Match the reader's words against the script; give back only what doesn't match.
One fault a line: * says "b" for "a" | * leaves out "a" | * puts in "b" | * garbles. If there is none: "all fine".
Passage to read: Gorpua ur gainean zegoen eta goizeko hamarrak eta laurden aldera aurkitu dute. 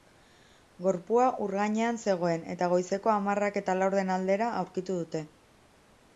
all fine